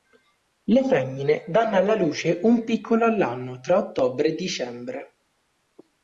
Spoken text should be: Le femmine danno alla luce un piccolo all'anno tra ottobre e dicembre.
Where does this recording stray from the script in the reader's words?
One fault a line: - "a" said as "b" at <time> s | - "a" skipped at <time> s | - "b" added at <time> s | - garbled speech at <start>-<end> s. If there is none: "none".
none